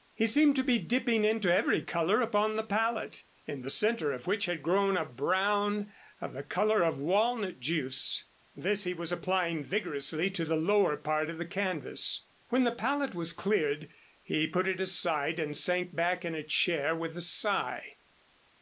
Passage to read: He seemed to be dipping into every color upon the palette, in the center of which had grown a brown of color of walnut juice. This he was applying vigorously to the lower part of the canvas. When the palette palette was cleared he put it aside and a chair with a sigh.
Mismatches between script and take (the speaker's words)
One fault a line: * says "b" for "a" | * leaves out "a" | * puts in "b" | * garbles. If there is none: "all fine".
* puts in "the"
* leaves out "palette"
* puts in "sank back in"